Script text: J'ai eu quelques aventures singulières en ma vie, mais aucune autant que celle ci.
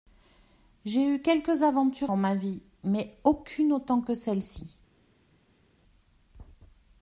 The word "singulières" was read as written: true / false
false